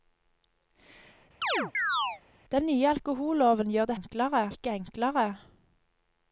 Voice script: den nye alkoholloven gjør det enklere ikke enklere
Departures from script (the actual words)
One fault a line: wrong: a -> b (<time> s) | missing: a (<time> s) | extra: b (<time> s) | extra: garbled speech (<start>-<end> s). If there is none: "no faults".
no faults